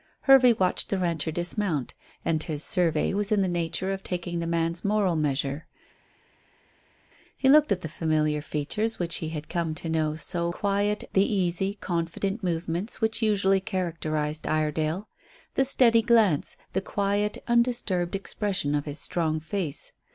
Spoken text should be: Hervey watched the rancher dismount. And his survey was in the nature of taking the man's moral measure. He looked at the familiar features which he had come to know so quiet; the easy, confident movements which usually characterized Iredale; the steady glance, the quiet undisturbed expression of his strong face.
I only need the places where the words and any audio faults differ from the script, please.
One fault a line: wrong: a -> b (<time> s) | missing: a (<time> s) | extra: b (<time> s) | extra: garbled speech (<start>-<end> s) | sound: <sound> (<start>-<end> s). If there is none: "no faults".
no faults